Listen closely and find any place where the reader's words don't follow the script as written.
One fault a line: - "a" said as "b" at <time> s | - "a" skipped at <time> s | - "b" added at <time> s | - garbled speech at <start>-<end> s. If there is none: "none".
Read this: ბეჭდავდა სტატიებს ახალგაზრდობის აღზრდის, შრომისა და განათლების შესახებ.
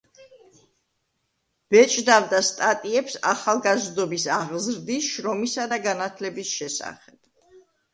none